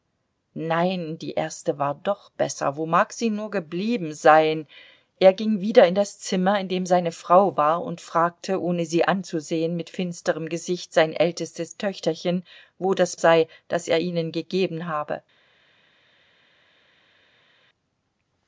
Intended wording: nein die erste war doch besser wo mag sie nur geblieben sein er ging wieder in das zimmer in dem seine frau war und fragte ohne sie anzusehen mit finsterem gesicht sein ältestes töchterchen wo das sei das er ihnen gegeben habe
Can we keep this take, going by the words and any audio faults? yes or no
yes